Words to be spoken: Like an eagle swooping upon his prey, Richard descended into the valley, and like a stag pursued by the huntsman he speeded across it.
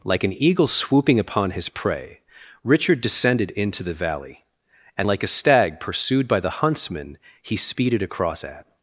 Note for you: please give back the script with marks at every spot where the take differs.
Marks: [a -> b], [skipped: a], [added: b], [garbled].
Like an eagle swooping upon his prey, Richard descended into the valley, and like a stag pursued by the huntsman he speeded across [it. -> at]